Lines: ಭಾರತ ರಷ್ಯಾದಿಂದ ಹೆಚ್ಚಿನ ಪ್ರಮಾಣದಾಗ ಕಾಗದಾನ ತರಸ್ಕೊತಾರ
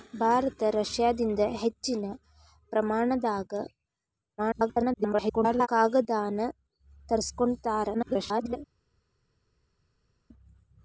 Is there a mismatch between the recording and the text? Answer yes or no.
yes